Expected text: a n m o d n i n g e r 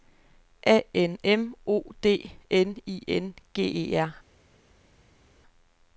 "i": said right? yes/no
yes